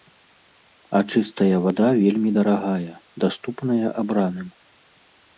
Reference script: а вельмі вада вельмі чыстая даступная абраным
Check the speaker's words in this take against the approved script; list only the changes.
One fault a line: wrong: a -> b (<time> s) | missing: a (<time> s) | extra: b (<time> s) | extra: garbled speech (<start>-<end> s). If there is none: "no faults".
wrong: вельмі -> чыстая (1.1 s)
wrong: чыстая -> дарагая (2.4 s)